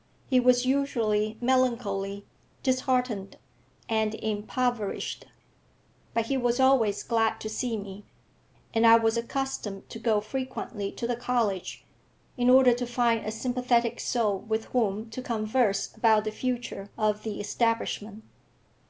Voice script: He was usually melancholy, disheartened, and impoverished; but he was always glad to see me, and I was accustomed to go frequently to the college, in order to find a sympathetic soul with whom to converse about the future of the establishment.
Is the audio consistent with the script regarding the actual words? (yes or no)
yes